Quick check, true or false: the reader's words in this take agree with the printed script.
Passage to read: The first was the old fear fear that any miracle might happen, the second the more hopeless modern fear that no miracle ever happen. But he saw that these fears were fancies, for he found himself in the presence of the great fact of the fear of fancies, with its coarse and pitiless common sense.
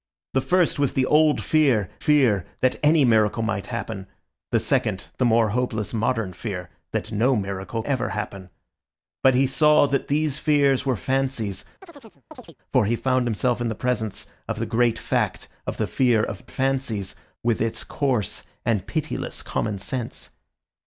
true